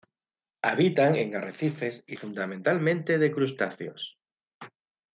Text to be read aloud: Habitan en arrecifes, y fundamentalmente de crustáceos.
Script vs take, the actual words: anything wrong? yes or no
no